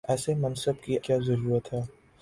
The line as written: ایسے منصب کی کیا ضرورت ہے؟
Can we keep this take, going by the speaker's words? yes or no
yes